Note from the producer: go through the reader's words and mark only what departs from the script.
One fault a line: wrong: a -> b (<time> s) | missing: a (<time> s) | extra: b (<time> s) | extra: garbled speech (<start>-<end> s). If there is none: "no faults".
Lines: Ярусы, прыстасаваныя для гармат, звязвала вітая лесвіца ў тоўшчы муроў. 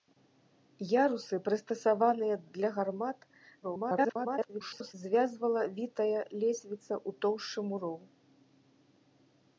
extra: garbled speech (3.6-4.9 s)